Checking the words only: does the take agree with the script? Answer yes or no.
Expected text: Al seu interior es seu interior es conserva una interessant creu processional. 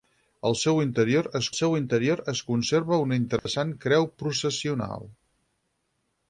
yes